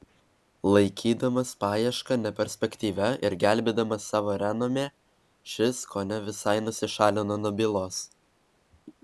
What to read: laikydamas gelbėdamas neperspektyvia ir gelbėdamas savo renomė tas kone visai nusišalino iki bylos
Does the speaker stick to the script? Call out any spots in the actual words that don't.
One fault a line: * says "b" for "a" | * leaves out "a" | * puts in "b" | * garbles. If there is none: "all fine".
* says "paiešką" for "gelbėdamas"
* says "šis" for "tas"
* says "nuo" for "iki"